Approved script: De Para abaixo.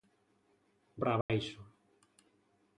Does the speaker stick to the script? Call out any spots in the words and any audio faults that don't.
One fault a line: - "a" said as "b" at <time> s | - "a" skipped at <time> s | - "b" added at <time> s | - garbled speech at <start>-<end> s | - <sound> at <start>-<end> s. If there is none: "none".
- dropout at 1.2-1.3 s